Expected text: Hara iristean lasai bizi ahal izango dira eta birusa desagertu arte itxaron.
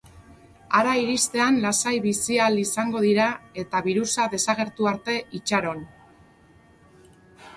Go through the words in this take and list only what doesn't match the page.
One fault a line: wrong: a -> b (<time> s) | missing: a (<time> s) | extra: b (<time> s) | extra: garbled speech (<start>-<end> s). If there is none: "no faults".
no faults